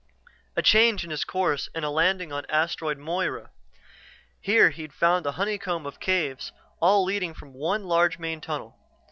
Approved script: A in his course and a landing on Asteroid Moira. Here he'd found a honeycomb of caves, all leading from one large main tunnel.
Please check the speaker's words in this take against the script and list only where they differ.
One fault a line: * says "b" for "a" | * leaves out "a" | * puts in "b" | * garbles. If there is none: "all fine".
* puts in "change"